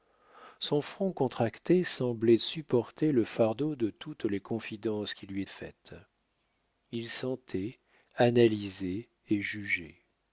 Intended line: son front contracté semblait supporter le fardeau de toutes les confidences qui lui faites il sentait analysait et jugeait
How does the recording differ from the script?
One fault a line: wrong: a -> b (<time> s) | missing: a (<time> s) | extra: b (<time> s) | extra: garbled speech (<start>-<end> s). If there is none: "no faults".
no faults